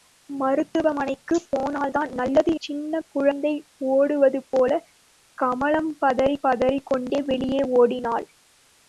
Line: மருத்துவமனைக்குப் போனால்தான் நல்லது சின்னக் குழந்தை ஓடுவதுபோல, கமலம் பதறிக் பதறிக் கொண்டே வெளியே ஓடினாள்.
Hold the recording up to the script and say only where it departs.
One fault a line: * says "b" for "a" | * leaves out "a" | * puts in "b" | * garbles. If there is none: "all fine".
all fine